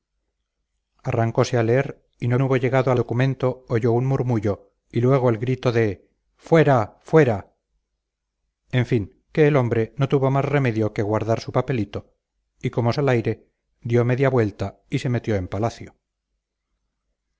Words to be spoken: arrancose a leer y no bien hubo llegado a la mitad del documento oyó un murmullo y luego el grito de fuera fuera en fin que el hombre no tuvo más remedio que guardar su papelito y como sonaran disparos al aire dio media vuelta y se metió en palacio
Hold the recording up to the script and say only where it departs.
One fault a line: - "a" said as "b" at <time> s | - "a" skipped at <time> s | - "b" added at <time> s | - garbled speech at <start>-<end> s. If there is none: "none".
- "bien" skipped at 2.4 s
- "la mitad del" skipped at 2.9 s
- "sonaran disparos" skipped at 12.9 s